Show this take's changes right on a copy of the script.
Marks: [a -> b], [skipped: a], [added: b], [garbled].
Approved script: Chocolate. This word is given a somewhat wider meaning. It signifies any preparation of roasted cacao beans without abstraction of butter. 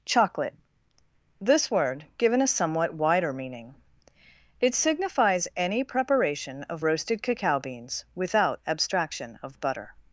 Chocolate. This word [skipped: is] given a somewhat wider meaning. It signifies any preparation of roasted cacao beans without abstraction of butter.